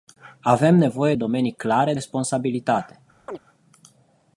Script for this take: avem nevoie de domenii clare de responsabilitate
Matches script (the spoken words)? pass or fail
fail